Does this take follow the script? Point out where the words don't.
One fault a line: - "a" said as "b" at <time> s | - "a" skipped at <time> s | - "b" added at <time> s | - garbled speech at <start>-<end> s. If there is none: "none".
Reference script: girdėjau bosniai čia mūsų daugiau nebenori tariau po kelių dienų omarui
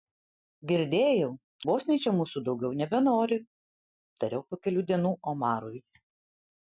none